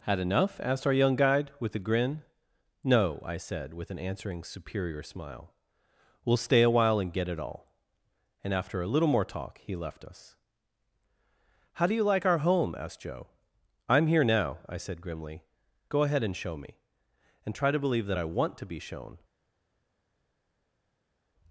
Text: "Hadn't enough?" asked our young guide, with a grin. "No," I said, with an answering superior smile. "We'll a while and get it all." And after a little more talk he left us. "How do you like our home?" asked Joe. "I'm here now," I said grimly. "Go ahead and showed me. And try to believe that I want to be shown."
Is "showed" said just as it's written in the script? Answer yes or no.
no